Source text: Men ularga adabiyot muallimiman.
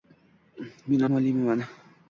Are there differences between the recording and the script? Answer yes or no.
yes